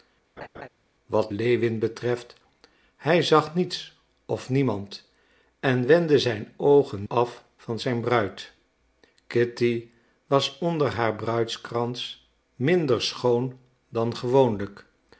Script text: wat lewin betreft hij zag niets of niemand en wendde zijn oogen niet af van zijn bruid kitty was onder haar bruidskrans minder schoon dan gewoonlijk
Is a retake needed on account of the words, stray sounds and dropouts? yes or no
yes